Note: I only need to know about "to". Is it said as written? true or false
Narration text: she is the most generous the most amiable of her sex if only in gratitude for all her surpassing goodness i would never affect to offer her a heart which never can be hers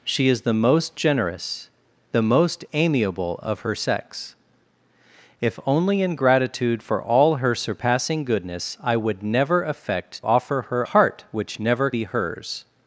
false